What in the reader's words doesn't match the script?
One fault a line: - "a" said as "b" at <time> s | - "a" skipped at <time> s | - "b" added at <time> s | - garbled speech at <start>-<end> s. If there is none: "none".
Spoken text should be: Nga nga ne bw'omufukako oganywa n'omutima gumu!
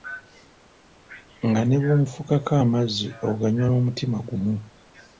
- "nga" skipped at 1.6 s
- "amazzi" added at 2.6 s